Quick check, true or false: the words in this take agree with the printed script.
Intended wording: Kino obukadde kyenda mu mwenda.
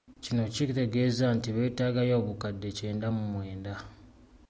false